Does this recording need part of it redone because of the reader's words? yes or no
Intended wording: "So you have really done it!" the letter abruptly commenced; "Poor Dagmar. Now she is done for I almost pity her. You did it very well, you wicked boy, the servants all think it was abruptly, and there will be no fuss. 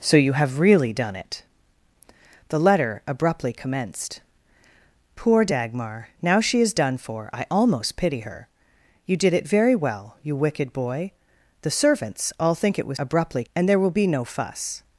no